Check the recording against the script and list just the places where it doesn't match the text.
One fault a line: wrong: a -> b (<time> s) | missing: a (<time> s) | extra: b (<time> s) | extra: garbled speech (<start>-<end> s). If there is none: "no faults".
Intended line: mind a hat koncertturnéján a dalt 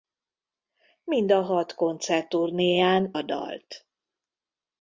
no faults